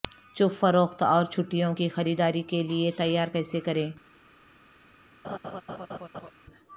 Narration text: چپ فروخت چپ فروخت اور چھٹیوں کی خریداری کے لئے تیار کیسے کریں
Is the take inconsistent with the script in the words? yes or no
yes